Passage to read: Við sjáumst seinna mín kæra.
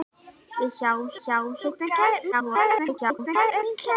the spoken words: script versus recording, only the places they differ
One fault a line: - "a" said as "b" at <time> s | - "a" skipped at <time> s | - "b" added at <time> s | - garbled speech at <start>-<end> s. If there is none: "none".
- "sjáumst" added at 1.2 s
- garbled speech at 2.3-3.6 s